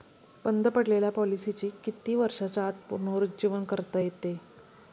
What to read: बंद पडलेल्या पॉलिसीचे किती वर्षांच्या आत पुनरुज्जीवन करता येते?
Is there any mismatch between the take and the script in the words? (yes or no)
no